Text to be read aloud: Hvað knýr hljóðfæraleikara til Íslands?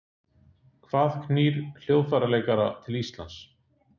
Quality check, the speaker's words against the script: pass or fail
pass